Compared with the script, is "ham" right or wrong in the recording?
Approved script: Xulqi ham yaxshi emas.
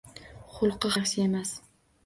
wrong